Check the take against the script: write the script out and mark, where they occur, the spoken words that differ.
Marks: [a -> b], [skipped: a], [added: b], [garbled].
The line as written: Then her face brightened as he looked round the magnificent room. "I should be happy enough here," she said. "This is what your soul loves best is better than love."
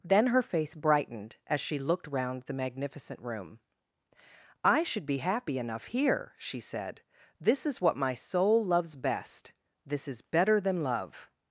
Then her face brightened as [he -> she] looked round the magnificent room. "I should be happy enough here," she said. "This is what [your -> my] soul loves best [added: this] is better than love."